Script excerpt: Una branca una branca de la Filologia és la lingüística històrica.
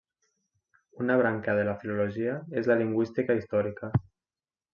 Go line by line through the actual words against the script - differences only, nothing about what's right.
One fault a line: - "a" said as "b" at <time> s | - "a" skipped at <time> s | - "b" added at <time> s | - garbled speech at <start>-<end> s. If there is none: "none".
- "una branca" skipped at 1.6 s